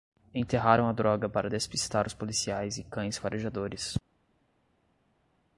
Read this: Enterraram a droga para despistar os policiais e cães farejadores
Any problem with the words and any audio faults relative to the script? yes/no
no